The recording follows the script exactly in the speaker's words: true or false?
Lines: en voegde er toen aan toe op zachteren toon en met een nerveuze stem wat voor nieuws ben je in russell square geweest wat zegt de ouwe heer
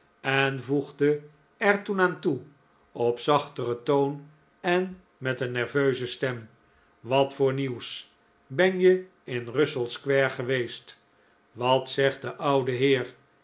true